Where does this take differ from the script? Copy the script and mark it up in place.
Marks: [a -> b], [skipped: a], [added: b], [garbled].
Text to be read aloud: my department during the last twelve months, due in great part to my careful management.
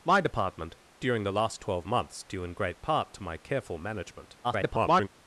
my department during the last twelve months, due in great part to my careful management. [garbled]